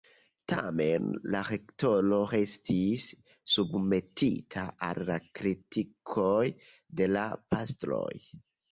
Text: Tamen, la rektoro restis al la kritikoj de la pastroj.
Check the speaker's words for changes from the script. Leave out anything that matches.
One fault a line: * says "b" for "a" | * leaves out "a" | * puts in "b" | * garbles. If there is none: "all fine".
* puts in "submetita"